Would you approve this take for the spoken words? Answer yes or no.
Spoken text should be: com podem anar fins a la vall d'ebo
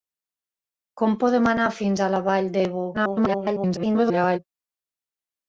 no